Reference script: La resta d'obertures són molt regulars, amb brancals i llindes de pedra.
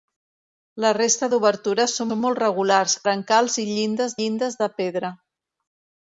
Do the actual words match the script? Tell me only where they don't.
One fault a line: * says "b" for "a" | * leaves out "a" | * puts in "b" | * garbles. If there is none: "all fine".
* puts in "són"
* leaves out "amb"
* puts in "llindes"